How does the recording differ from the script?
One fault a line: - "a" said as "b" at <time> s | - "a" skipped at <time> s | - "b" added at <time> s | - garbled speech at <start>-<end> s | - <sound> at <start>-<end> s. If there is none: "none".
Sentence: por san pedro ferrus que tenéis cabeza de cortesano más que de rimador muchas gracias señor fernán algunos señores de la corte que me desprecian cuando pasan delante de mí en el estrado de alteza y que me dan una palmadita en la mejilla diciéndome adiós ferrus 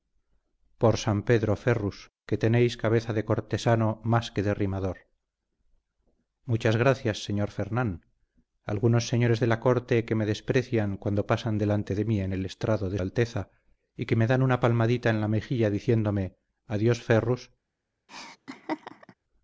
- laugh at 18.1-19.1 s